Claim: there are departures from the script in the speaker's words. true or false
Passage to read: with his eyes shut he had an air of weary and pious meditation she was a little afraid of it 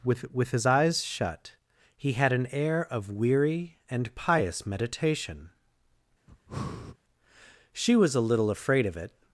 true